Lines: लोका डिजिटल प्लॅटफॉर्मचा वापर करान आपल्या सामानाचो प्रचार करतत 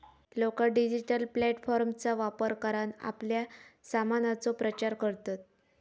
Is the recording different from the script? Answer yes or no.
no